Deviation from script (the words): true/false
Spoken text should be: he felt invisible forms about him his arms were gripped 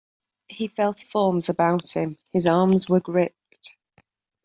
true